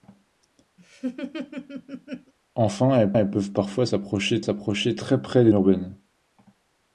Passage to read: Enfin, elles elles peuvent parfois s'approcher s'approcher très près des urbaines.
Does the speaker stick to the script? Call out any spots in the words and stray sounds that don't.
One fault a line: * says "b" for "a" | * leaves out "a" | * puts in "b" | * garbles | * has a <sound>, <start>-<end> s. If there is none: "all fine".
* has a laugh, 0.8-2.3 s